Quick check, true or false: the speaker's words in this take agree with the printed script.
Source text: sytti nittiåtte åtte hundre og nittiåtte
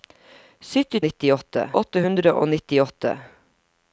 true